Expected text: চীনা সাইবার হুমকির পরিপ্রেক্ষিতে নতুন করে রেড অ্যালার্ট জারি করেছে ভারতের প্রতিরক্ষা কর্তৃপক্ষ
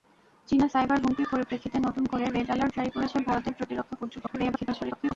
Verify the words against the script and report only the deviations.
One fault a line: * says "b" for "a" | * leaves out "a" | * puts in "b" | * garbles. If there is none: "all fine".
* garbles